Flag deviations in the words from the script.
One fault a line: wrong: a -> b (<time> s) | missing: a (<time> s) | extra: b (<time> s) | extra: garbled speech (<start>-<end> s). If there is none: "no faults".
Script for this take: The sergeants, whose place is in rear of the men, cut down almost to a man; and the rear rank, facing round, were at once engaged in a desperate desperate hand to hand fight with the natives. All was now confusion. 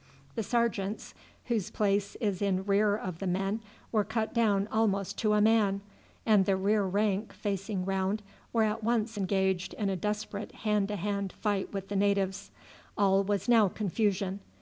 extra: were (3.9 s)
missing: desperate (10.5 s)